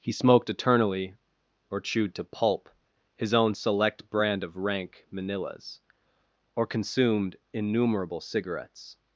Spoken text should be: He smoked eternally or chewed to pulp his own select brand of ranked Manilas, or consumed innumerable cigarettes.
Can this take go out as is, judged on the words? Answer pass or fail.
fail